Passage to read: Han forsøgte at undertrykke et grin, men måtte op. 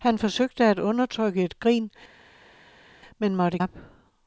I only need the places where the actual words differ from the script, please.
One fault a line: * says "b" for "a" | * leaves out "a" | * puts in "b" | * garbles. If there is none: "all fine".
all fine